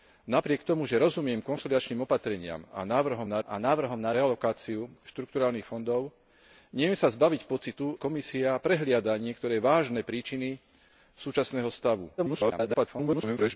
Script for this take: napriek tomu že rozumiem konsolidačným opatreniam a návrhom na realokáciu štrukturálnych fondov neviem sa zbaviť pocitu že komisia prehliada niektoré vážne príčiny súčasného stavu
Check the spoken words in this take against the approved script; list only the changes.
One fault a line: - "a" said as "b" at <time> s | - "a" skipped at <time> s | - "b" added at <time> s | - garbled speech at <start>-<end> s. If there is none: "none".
- "a návrhom na" added at 3.5 s
- "že" skipped at 7.9 s
- garbled speech at 12.2-13.6 s